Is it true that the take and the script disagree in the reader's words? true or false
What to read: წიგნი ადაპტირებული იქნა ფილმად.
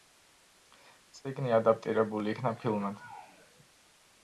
false